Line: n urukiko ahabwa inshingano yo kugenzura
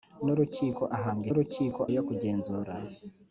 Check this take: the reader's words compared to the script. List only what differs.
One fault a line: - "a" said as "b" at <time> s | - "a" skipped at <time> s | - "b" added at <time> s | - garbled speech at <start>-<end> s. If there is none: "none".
- "inshingano" said as "urukiko" at 1.3 s